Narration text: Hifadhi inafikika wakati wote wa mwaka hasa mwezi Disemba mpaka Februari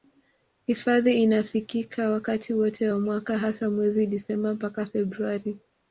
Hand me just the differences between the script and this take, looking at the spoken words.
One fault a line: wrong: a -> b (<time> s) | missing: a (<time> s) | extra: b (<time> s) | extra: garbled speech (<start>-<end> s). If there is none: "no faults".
no faults